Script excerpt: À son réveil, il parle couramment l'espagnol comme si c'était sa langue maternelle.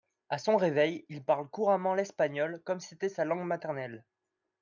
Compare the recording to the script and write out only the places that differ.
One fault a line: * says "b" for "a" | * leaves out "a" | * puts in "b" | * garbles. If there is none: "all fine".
* leaves out "si"